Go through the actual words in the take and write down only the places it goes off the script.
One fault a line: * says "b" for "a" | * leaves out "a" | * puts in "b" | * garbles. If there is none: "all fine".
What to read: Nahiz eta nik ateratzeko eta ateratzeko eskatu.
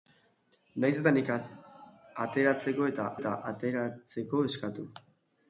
* puts in "eta"